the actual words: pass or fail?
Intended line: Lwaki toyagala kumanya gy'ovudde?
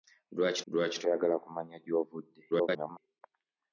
fail